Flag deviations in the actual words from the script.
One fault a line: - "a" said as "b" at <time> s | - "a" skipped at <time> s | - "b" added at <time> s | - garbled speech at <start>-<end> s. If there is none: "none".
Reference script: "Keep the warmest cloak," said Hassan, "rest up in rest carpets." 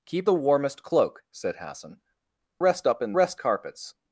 none